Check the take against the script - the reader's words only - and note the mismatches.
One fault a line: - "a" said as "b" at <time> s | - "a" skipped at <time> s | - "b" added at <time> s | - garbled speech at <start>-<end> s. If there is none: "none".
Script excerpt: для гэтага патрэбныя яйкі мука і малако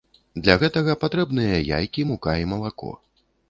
none